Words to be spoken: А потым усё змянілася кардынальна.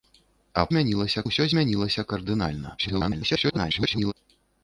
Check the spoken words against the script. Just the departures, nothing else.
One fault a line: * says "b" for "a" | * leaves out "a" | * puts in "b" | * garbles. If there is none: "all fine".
* says "змянілася" for "потым"
* garbles